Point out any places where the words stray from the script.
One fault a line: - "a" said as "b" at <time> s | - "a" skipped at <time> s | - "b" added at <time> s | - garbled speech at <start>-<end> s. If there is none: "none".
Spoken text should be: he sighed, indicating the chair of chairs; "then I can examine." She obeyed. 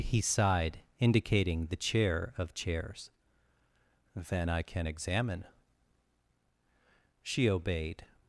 none